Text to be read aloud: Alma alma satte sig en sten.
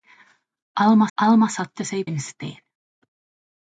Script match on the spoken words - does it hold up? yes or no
yes